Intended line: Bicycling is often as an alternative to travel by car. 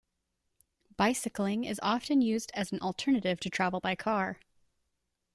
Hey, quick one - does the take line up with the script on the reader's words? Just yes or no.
no